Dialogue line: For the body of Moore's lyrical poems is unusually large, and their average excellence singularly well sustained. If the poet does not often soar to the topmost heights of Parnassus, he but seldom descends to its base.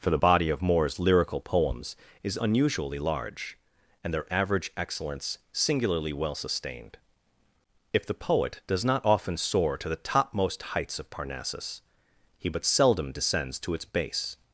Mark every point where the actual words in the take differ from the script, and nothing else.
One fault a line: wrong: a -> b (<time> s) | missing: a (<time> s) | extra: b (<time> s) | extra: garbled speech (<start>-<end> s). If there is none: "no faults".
no faults